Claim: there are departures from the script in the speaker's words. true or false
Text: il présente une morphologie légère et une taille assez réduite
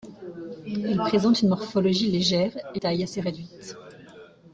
true